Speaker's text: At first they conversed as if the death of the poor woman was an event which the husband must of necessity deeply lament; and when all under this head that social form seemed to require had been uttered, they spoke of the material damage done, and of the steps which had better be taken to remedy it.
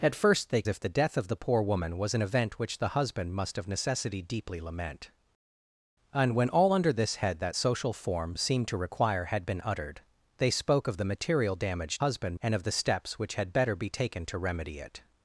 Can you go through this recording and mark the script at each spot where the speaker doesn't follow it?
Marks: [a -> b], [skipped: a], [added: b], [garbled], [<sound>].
At first they [skipped: conversed as] if the death of the poor woman was an event which the husband must of necessity deeply lament; and when all under this head that social form seemed to require had been uttered, they spoke of the material damage [done, -> husband] and of the steps which had better be taken to remedy it.